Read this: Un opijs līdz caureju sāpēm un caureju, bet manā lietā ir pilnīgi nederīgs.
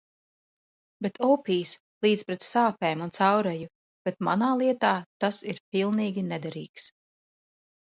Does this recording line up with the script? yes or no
no